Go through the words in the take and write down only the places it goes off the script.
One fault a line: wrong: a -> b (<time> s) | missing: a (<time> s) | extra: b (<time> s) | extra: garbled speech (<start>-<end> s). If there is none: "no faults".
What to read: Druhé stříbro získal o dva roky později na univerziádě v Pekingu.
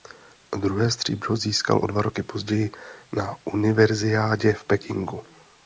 no faults